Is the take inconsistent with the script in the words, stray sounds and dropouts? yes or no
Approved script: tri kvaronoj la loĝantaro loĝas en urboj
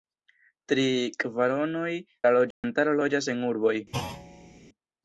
yes